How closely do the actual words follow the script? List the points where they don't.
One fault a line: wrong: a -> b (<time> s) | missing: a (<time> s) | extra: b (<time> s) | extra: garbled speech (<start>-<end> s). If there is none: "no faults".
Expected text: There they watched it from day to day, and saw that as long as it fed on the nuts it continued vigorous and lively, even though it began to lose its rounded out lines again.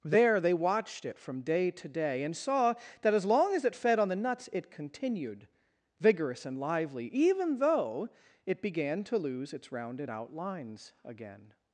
no faults